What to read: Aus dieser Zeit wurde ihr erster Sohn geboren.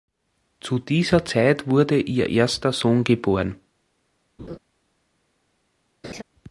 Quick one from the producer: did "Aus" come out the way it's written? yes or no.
no